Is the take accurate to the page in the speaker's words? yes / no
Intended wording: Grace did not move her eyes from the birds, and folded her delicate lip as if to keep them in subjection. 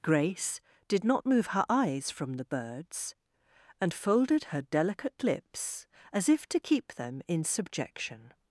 no